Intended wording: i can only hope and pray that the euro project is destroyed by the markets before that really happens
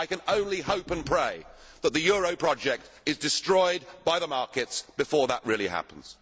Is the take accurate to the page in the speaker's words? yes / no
yes